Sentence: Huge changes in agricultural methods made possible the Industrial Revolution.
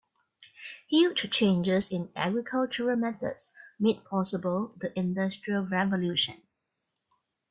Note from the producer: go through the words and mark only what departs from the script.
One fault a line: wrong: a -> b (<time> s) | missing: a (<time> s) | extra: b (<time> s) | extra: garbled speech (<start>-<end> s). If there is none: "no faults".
no faults